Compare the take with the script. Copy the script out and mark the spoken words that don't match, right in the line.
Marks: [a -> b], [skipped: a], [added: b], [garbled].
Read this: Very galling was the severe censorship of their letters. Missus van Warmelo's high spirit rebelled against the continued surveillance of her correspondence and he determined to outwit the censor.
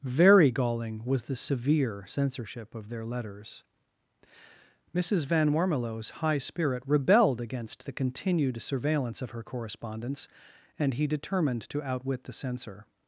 Very galling was the severe censorship of their letters. Missus van Warmelo's high spirit rebelled against the continued surveillance of her correspondence and he determined to outwit the censor.